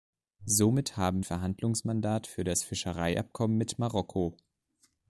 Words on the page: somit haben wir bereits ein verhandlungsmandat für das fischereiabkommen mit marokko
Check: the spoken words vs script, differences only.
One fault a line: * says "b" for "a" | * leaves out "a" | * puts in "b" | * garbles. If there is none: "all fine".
* leaves out "wir bereits ein"